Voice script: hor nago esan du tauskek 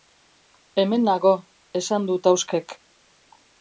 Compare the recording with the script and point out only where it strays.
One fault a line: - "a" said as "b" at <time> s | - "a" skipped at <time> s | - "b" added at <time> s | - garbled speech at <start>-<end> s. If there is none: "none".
- "hor" said as "hemen" at 0.8 s